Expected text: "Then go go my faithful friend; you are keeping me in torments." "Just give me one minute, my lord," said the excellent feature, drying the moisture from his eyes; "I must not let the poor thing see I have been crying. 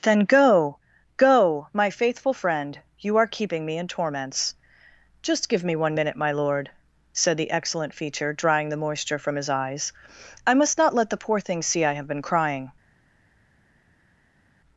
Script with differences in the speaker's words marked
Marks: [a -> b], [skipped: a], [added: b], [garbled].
"Then go go my faithful friend; you are keeping me in torments." "Just give me one minute, my lord," said the excellent feature, drying the moisture from his eyes; "I must not let the poor thing see I have been crying.